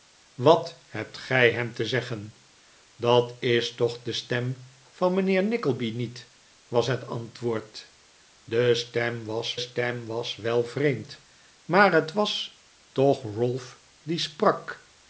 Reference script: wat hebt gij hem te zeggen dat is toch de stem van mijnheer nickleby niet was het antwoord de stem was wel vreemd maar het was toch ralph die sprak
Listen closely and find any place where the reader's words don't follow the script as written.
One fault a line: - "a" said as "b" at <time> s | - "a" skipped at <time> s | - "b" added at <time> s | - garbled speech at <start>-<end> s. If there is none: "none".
- "stem was" added at 9.6 s